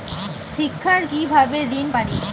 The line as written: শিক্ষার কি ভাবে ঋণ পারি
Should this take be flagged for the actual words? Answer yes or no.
no